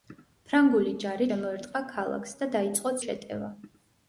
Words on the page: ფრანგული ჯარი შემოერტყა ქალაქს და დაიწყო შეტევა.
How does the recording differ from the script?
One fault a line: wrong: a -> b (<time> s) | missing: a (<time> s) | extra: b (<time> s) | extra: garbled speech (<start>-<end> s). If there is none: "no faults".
no faults